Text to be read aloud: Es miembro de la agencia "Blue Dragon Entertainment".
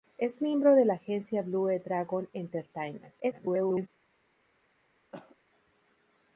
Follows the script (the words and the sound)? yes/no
no